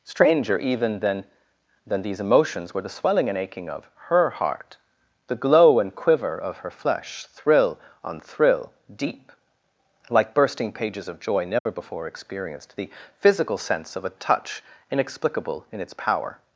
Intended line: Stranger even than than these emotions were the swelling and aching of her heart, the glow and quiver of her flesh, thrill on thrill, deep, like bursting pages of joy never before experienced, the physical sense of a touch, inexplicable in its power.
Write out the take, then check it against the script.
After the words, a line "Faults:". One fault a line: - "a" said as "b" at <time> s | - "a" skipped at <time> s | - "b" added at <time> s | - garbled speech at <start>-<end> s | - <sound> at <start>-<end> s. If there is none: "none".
Stranger even than than these emotions were the swelling and aching of her heart, the glow and quiver of her flesh, thrill on thrill, deep, like bursting pages of joy never before experienced, the physical sense of a touch, inexplicable in its power.
Faults:
- dropout at 11.6-11.7 s